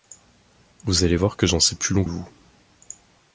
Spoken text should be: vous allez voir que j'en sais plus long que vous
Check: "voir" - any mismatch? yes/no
no